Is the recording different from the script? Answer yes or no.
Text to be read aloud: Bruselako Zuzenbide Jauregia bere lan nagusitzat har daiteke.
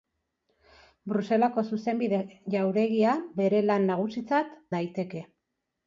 yes